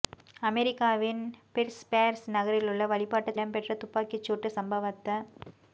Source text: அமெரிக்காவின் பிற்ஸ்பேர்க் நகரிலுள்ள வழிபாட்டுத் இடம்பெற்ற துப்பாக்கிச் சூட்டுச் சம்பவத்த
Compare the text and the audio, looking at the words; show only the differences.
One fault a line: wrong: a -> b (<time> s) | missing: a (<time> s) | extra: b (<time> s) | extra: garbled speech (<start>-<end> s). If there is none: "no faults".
no faults